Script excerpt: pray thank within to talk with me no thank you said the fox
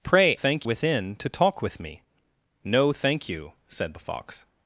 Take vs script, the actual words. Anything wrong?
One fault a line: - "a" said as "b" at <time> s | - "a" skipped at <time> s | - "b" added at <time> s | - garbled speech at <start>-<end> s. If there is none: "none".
none